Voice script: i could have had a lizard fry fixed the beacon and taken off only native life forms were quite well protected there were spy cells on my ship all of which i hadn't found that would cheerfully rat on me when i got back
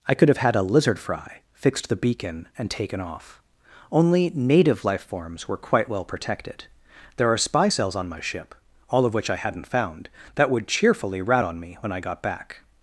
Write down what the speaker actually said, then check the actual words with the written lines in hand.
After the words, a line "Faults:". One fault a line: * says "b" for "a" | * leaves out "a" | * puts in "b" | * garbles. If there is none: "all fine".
i could have had a lizard fry fixed the beacon and taken off only native life forms were quite well protected there are spy cells on my ship all of which i hadn't found that would cheerfully rat on me when i got back
Faults:
* says "are" for "were"